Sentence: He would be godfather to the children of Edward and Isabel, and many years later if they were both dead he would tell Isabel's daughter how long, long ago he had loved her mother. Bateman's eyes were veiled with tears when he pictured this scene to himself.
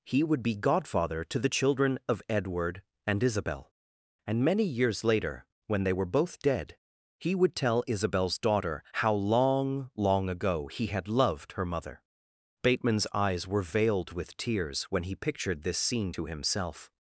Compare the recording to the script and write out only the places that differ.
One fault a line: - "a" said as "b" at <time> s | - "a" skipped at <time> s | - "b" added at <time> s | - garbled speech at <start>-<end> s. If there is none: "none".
- "if" said as "when" at 5.7 s